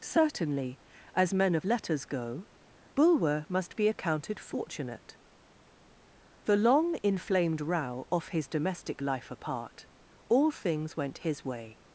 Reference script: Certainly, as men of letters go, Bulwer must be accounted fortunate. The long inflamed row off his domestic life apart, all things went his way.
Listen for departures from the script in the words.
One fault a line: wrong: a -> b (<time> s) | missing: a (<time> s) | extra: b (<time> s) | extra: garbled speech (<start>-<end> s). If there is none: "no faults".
no faults